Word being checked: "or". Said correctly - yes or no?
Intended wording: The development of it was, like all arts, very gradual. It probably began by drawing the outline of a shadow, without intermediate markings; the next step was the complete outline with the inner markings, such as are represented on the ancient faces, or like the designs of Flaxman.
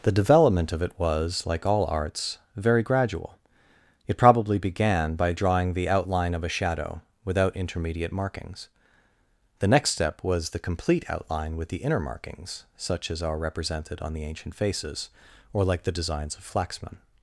yes